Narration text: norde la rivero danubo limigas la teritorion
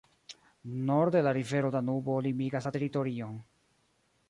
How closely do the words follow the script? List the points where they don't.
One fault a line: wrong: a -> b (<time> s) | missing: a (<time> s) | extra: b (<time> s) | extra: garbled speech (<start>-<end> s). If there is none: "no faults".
no faults